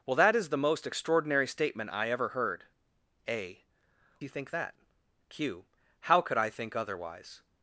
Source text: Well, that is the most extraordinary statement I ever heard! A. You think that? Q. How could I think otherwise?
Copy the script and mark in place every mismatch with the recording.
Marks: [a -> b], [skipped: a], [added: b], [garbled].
Well, that is the most extraordinary statement I ever heard! A. You think that? Q. How could I think otherwise?